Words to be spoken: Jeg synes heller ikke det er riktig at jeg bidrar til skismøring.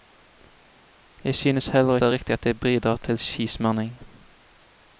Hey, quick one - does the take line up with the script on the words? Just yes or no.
no